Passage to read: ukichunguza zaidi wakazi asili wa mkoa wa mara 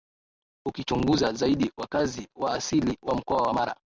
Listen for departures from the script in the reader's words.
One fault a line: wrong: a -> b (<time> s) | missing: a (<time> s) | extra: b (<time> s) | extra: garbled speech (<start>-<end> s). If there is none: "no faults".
extra: wa (2.4 s)